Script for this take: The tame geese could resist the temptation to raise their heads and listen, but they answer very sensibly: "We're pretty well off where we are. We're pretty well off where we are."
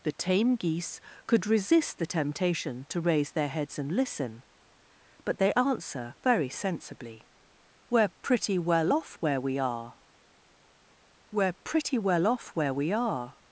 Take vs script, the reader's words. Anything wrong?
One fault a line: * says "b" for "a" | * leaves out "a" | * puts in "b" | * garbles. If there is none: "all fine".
all fine